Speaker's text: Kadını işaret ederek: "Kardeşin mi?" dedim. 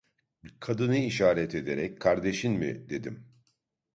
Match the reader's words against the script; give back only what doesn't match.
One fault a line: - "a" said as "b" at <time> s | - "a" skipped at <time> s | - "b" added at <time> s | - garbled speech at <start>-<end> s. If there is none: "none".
none